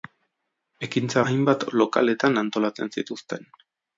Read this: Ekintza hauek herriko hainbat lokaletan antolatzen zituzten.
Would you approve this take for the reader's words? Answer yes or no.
no